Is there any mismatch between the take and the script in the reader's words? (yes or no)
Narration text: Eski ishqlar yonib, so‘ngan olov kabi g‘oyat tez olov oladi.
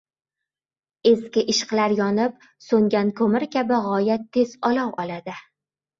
yes